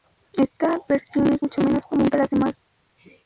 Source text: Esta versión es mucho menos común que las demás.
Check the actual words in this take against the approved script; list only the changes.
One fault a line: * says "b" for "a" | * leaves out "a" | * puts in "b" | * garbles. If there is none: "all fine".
all fine